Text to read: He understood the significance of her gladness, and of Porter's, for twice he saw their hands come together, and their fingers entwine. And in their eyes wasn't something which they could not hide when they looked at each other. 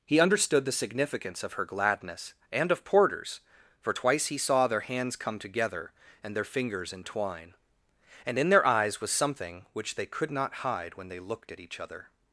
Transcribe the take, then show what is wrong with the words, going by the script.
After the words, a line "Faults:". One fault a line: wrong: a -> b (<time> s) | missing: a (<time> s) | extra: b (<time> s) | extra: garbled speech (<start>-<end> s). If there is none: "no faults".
He understood the significance of her gladness, and of Porter's, for twice he saw their hands come together, and their fingers entwine. And in their eyes was something which they could not hide when they looked at each other.
Faults:
wrong: wasn't -> was (9.0 s)